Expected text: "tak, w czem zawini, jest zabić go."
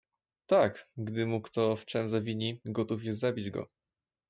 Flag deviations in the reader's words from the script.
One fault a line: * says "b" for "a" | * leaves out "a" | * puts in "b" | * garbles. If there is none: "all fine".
* puts in "gdy mu kto"
* puts in "gotów"